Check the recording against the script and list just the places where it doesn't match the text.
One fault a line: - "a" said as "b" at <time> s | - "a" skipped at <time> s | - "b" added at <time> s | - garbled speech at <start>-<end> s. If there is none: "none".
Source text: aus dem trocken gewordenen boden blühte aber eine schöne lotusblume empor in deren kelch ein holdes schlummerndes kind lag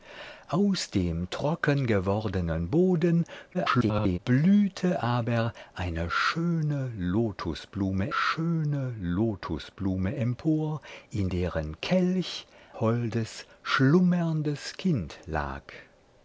- garbled speech at 3.5-4.2 s
- "schöne lotusblume" added at 8.1 s
- "ein" skipped at 12.5 s